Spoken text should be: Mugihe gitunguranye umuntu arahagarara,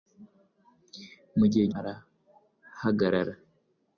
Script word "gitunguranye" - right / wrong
wrong